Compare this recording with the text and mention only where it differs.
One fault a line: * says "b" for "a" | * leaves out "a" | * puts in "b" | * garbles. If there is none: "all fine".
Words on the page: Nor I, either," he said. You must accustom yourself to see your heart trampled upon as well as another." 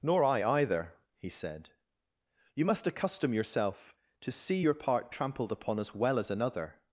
* says "part" for "heart"